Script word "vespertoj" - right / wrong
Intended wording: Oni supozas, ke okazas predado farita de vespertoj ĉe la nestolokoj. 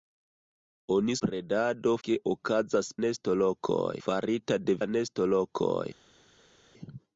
wrong